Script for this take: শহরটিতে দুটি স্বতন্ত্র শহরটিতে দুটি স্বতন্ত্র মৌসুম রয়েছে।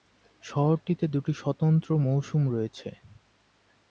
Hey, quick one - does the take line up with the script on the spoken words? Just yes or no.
no